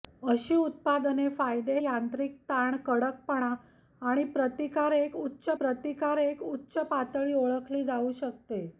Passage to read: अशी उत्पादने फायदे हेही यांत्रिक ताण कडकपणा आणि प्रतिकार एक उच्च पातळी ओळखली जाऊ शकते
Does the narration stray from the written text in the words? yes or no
yes